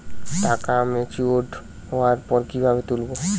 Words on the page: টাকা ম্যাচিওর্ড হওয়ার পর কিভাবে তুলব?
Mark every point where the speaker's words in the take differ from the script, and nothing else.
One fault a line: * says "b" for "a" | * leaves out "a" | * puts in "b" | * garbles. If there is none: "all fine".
all fine